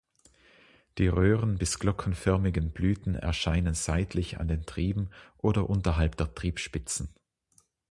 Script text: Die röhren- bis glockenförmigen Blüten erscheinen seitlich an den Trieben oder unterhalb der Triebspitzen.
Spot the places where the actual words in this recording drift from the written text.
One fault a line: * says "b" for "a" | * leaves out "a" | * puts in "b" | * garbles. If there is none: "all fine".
all fine